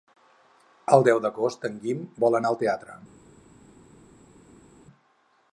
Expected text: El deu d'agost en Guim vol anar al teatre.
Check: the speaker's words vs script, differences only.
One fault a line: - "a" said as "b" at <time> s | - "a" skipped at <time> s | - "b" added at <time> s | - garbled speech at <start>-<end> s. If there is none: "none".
none